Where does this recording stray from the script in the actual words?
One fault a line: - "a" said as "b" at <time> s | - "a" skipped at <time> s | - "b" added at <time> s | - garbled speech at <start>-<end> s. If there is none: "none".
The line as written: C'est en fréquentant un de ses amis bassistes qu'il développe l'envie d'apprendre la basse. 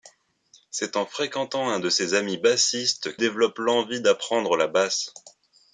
- "qu'il" skipped at 3.1 s